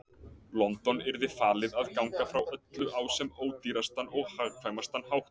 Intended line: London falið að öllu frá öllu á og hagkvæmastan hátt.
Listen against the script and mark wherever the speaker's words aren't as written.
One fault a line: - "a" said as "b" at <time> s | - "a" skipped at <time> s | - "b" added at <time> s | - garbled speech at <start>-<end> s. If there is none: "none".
- "yrði" added at 1.1 s
- "öllu" said as "ganga" at 2.0 s
- "sem ódýrastan" added at 3.2 s